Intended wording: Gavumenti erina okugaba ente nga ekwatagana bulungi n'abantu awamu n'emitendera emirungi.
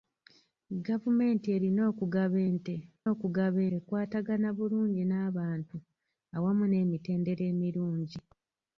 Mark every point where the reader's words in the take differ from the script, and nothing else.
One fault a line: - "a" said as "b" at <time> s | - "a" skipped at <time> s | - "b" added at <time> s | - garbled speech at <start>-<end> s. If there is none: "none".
- "nga" said as "okugaba" at 3.1 s